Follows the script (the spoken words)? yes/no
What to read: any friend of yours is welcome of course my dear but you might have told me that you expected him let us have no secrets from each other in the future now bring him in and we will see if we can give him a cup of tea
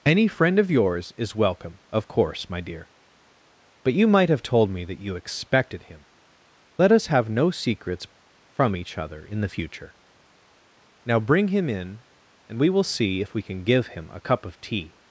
yes